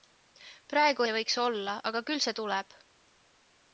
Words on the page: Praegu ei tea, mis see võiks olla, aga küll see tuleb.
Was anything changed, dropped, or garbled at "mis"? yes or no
yes